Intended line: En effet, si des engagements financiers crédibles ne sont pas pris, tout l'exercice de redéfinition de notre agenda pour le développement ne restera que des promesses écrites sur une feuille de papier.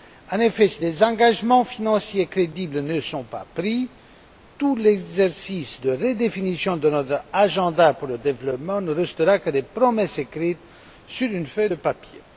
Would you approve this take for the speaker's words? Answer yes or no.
yes